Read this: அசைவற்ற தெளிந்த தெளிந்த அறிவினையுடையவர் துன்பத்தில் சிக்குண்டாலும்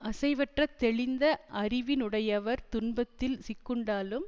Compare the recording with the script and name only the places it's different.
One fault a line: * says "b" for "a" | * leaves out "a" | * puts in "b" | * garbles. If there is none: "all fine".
* leaves out "தெளிந்த"